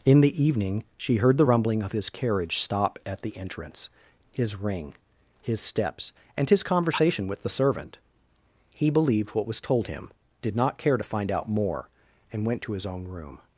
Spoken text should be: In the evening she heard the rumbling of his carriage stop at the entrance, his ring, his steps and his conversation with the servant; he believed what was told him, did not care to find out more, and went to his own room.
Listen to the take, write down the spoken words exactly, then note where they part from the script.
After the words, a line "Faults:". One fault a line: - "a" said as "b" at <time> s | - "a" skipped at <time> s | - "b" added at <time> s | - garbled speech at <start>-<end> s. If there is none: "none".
In the evening she heard the rumbling of his carriage stop at the entrance, his ring, his steps and his conversation with the servant; he believed what was told him, did not care to find out more, and went to his own room.
Faults:
none